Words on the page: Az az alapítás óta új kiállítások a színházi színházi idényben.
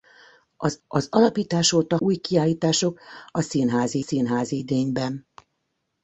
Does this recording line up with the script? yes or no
yes